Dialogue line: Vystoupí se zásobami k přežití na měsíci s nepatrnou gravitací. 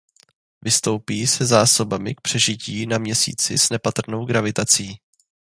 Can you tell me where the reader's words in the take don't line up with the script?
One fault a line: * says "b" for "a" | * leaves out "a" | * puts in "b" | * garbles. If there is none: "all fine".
all fine